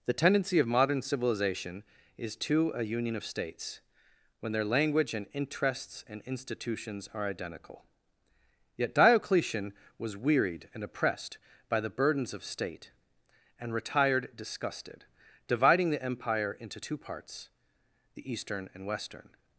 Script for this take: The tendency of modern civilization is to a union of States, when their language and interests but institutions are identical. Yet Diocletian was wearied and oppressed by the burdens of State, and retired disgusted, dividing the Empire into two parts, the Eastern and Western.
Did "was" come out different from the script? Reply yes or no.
no